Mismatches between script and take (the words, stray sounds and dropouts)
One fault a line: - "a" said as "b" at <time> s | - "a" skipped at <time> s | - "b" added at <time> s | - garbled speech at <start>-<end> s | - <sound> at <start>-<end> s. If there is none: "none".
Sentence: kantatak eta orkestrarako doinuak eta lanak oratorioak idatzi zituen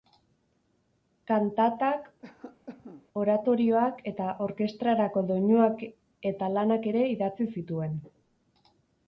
- cough at 2.2-3.1 s
- "oratorioak" added at 3.2 s
- "oratorioak" said as "ere" at 6.9 s